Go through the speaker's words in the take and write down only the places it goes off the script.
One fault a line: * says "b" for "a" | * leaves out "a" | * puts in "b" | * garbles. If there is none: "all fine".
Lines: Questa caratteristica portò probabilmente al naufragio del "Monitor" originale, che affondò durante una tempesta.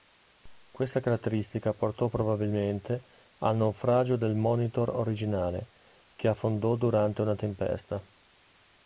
all fine